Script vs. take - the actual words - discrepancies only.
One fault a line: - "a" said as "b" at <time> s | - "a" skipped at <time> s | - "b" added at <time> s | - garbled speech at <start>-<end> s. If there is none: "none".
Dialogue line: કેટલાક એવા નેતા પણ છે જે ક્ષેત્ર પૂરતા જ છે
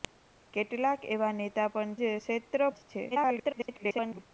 - "છે" skipped at 1.9 s
- "પૂરતા" skipped at 2.6 s
- garbled speech at 3.1-4.2 s